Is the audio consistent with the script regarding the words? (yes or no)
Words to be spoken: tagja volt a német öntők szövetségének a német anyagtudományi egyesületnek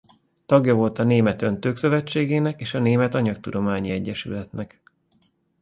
no